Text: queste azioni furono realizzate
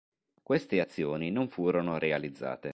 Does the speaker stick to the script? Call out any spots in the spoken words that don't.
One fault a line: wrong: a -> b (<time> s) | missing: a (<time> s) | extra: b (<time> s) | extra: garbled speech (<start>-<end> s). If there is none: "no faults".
extra: non (1.3 s)